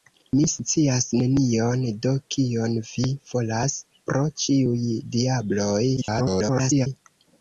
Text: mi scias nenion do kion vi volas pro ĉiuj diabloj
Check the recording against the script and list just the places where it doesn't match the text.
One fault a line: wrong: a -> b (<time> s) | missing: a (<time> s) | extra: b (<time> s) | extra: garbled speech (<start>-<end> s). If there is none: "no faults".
extra: garbled speech (6.0-6.9 s)